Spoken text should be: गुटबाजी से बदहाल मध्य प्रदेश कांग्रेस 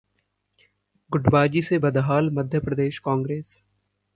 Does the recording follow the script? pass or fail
pass